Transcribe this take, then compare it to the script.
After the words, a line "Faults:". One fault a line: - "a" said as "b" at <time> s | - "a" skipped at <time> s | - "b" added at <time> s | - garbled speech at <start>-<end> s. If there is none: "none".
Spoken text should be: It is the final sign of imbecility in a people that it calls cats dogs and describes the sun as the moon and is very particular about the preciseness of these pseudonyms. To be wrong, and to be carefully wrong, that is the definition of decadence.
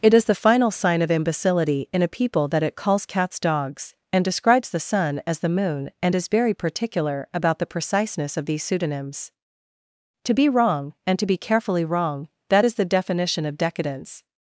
It is the final sign of imbecility in a people that it calls cats dogs and describes the sun as the moon and is very particular about the preciseness of these pseudonyms. To be wrong, and to be carefully wrong, that is the definition of decadence.
Faults:
none